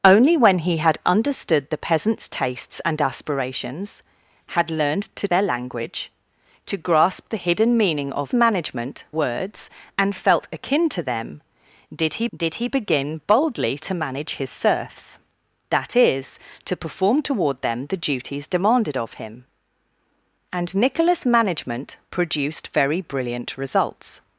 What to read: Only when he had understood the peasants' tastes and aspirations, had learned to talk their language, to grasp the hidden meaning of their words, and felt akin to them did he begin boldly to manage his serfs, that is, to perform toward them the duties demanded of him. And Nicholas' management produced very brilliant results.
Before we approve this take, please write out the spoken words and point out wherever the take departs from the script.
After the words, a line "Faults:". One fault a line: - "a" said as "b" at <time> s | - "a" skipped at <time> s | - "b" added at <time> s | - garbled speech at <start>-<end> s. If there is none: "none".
Only when he had understood the peasants' tastes and aspirations, had learned to their language, to grasp the hidden meaning of management words, and felt akin to them did he did he begin boldly to manage his serfs, that is, to perform toward them the duties demanded of him. And Nicholas' management produced very brilliant results.
Faults:
- "talk" skipped at 5.3 s
- "their" said as "management" at 8.3 s
- "did he" added at 12.3 s